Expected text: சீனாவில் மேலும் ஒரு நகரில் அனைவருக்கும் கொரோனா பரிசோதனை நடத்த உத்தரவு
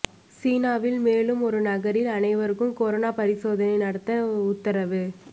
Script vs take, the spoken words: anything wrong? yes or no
no